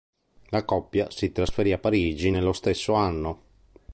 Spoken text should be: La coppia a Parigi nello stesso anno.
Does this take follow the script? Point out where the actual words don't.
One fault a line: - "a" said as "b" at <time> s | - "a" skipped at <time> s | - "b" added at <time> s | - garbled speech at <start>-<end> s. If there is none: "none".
- "si trasferì" added at 1.1 s